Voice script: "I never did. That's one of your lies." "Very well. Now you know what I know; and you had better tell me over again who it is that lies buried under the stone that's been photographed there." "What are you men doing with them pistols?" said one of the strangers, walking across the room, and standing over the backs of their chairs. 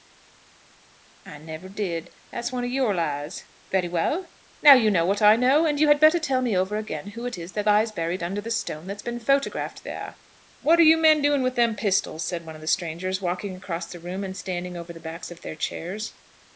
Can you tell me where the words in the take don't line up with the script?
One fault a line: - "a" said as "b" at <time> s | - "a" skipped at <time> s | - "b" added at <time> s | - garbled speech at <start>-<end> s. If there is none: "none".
none